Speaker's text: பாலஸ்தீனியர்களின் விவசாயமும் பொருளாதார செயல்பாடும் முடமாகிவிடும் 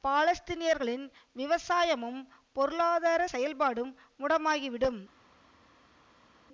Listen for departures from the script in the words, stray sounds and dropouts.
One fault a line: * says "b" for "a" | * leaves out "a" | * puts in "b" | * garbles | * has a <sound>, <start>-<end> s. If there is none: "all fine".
all fine